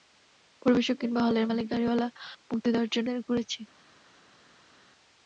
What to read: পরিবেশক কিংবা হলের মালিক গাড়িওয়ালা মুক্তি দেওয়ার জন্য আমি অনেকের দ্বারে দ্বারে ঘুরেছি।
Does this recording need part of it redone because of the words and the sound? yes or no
yes